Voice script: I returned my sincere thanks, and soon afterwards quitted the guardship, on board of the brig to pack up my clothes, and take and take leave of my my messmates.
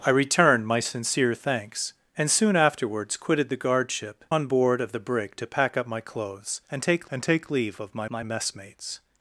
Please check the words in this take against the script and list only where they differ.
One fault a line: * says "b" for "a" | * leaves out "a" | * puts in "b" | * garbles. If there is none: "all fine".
all fine